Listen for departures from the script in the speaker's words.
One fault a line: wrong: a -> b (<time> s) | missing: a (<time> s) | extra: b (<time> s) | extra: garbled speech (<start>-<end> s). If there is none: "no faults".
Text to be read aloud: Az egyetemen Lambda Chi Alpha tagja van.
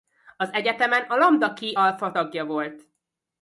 extra: a (1.0 s)
wrong: van -> volt (2.5 s)